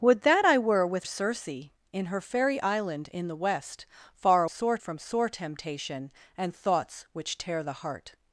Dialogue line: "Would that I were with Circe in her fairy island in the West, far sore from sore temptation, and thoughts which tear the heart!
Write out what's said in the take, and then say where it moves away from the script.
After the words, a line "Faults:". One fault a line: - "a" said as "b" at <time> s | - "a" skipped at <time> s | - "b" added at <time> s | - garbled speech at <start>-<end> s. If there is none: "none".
"Would that I were with Circe in her fairy island in the West, far sore from sore temptation, and thoughts which tear the heart!
Faults:
none